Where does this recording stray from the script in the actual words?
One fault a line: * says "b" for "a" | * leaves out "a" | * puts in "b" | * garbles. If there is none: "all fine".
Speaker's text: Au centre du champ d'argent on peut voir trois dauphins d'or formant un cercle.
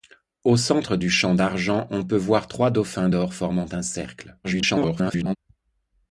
* garbles